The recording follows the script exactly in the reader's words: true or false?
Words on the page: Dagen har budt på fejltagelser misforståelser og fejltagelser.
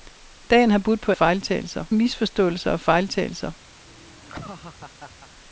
true